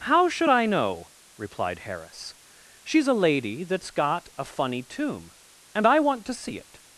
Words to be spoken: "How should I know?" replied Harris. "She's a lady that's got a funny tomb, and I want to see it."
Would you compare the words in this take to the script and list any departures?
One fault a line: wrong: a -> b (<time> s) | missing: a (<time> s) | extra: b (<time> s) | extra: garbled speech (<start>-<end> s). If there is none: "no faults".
no faults